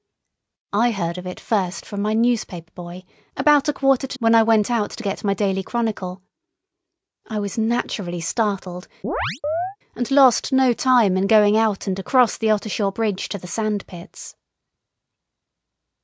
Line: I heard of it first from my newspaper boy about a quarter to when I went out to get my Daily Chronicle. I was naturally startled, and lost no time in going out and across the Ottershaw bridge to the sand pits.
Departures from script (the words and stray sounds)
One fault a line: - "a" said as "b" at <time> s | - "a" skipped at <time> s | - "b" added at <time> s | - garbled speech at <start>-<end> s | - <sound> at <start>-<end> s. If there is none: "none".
- chirp at 9.0-9.8 s